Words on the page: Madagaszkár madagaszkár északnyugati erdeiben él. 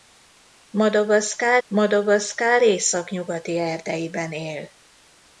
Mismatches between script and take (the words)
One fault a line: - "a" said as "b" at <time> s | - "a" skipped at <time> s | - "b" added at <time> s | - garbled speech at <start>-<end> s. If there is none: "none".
none